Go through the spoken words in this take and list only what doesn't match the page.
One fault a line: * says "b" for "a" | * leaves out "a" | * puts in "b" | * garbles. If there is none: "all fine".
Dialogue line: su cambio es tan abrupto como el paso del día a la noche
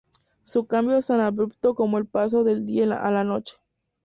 all fine